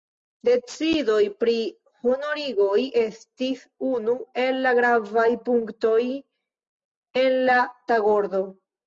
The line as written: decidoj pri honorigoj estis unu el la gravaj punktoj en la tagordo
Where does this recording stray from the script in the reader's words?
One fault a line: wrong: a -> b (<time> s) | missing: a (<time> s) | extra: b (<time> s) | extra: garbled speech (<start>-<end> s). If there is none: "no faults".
no faults